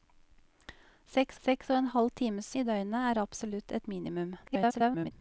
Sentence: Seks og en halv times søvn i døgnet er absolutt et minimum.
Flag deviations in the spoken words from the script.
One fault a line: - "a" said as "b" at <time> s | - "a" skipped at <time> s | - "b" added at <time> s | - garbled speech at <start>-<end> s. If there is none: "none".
- "seks" added at 1.5 s
- "søvn" skipped at 2.5 s
- garbled speech at 4.5-5.1 s